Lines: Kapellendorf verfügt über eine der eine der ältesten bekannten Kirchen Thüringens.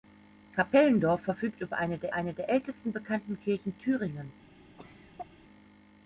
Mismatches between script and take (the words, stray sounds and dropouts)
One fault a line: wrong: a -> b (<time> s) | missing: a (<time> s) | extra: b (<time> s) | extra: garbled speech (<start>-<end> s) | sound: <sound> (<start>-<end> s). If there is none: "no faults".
sound: cough (4.8-5.3 s)